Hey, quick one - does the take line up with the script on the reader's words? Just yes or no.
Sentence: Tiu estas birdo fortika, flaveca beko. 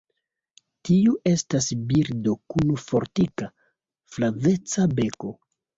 no